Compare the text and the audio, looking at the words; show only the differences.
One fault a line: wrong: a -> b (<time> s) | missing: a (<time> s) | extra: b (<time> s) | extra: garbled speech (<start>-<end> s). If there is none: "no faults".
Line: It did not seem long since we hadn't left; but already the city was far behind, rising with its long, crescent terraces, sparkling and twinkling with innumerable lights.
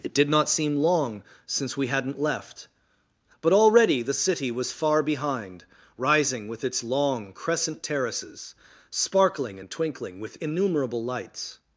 no faults